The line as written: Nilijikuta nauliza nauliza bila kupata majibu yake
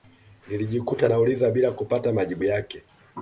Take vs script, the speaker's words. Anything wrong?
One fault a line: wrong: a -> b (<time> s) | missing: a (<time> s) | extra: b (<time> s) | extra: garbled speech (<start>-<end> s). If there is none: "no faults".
missing: nauliza (1.5 s)